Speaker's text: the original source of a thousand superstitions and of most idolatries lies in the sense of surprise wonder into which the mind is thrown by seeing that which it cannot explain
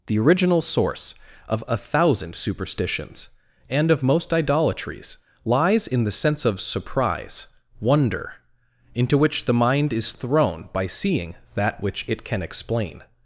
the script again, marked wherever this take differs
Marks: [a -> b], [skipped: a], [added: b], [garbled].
the original source of a thousand superstitions and of most idolatries lies in the sense of surprise wonder into which the mind is thrown by seeing that which it [cannot -> can] explain